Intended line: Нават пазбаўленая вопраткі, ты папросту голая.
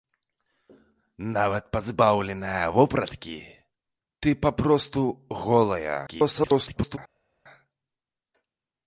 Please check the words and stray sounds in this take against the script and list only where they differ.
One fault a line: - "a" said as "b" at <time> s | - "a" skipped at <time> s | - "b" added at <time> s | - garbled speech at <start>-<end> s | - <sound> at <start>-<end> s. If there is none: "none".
- garbled speech at 6.1-7.0 s